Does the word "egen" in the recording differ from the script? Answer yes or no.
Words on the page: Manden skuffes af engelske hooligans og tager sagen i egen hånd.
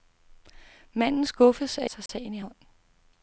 yes